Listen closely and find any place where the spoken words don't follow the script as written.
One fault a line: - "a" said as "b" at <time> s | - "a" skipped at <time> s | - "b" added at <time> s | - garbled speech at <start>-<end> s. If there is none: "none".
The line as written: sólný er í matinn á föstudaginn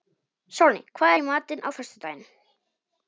- "hvað" added at 1.0 s